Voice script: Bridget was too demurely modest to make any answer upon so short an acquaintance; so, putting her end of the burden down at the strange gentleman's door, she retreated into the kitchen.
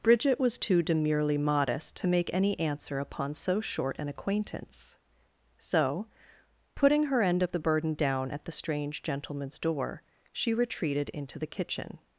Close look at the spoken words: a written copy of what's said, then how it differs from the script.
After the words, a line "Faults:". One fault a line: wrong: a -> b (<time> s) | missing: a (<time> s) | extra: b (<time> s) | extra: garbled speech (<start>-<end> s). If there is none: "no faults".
Bridget was too demurely modest to make any answer upon so short an acquaintance; so, putting her end of the burden down at the strange gentleman's door, she retreated into the kitchen.
Faults:
no faults